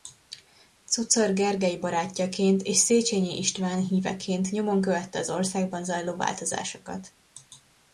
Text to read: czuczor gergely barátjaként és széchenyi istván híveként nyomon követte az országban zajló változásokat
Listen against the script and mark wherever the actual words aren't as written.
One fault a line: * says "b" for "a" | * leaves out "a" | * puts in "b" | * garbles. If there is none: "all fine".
all fine